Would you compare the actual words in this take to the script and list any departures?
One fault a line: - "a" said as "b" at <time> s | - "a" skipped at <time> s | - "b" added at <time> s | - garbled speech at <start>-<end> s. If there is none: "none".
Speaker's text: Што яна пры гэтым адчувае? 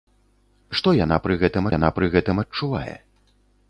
- "яна пры гэтым" added at 1.7 s